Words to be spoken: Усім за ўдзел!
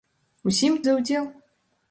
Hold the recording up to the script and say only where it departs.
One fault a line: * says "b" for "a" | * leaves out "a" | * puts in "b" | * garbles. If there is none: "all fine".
all fine